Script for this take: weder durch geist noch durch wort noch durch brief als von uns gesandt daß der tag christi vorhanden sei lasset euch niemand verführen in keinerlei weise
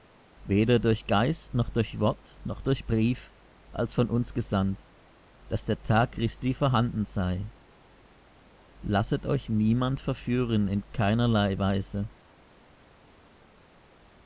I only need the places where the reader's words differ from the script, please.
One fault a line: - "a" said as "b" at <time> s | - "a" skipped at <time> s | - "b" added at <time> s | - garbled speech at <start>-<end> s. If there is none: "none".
none